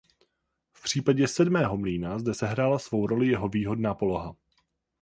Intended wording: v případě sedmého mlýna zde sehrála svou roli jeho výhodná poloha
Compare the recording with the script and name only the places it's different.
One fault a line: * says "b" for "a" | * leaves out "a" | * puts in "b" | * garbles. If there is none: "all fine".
all fine